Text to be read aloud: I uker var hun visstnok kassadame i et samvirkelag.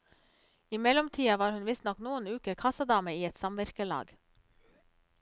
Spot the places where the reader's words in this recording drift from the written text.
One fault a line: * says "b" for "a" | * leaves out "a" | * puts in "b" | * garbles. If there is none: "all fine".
* says "mellomtida" for "uker"
* puts in "noen uker"